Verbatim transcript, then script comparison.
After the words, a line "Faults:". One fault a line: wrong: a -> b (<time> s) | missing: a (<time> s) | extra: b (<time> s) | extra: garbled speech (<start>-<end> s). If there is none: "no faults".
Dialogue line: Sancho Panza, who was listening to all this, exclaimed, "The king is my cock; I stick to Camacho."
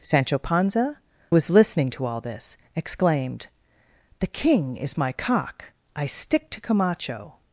Sancho Panza, was listening to all this, exclaimed, "The king is my cock; I stick to Camacho."
Faults:
missing: who (1.0 s)